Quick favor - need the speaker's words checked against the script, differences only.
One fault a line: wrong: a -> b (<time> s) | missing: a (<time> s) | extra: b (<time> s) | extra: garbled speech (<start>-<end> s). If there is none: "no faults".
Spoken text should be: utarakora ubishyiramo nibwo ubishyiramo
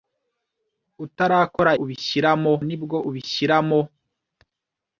no faults